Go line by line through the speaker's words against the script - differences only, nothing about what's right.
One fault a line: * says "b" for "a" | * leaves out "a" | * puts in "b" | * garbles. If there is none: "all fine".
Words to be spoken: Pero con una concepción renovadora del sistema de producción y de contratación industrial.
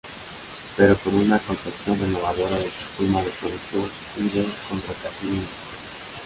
all fine